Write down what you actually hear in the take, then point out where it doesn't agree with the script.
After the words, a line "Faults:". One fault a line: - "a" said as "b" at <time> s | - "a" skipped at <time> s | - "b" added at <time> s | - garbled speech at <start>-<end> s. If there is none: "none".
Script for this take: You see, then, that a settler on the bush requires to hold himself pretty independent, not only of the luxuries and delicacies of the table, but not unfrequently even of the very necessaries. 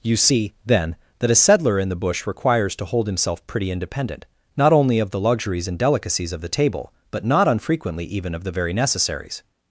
You see, then, that a settler in the bush requires to hold himself pretty independent, not only of the luxuries and delicacies of the table, but not unfrequently even of the very necessaries.
Faults:
- "on" said as "in" at 1.8 s